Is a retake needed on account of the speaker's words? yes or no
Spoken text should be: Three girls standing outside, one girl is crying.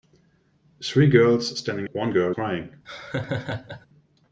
yes